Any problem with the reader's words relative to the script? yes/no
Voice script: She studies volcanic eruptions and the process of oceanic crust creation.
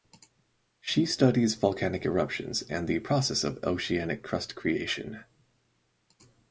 no